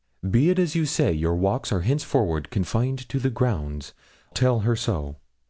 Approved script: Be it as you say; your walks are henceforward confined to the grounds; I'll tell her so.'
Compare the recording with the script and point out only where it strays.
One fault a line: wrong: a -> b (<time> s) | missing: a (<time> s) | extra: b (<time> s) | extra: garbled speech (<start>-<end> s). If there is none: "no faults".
missing: I'll (3.9 s)